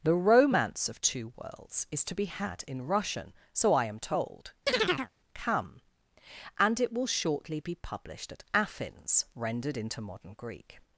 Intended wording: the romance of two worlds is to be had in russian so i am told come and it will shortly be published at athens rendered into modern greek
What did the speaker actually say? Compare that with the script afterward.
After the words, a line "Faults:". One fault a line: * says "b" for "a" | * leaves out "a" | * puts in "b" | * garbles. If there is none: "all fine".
the romance of two worlds is to be had in russian so i am told come and it will shortly be published at athens rendered into modern greek
Faults:
all fine